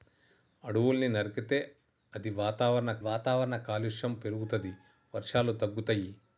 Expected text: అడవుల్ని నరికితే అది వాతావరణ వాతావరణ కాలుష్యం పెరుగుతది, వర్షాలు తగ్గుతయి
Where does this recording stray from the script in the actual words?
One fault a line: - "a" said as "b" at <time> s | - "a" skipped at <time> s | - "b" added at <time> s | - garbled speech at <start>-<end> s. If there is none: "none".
none